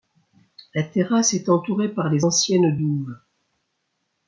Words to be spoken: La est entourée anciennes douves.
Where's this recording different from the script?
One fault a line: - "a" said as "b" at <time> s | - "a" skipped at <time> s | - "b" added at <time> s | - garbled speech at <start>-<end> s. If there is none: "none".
- "terrasse" added at 0.8 s
- "par les" added at 1.9 s